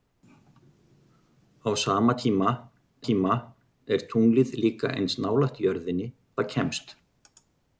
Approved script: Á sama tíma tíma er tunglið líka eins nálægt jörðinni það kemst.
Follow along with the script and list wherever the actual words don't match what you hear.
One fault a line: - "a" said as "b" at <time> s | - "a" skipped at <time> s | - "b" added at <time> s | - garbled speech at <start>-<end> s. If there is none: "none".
none